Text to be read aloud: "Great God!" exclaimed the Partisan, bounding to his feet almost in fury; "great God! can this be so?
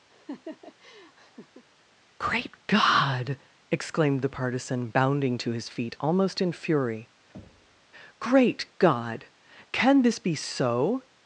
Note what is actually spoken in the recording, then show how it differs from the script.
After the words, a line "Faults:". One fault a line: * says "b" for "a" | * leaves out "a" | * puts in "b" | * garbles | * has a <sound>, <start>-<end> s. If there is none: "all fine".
"Great God!" exclaimed the Partisan, bounding to his feet almost in fury; "great God! can this be so?
Faults:
* has a laugh, 0.1-1.7 s
* has a thud, 7.3-7.9 s